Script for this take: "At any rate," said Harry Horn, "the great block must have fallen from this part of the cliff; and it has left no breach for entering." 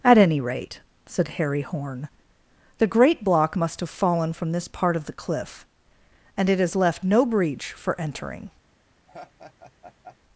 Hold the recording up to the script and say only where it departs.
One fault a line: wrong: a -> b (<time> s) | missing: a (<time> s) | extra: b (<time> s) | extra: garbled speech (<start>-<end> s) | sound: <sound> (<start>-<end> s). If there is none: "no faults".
sound: laugh (9.1-10.2 s)